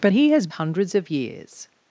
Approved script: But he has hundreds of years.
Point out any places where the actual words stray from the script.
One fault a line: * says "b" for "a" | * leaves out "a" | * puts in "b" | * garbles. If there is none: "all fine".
all fine